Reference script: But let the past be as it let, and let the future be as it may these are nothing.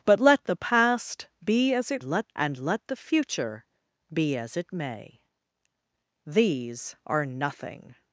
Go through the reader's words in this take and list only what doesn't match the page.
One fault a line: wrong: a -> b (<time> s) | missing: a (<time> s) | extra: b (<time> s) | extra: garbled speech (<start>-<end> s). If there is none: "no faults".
no faults